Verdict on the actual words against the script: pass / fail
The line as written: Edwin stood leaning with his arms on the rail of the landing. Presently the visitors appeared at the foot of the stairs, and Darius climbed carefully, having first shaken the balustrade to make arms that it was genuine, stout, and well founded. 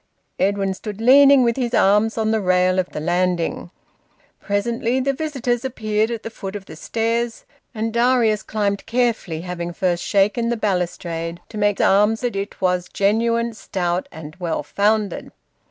pass